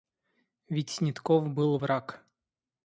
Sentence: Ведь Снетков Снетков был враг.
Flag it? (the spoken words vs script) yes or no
yes